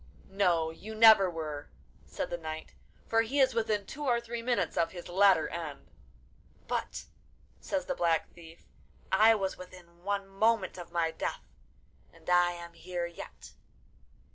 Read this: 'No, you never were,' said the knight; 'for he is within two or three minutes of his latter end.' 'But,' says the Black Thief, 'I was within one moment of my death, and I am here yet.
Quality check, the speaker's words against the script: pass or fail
pass